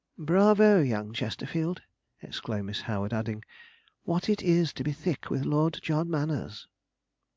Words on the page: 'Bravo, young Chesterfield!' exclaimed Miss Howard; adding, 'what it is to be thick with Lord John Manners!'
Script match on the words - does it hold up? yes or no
yes